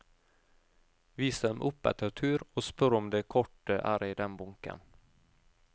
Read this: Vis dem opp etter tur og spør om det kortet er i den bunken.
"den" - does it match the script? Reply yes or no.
yes